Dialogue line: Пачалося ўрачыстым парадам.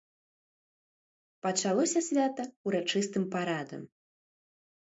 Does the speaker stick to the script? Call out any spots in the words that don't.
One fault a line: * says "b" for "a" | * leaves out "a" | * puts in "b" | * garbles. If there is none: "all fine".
* puts in "свята"